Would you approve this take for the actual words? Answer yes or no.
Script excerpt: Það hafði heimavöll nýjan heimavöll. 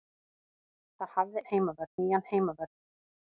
yes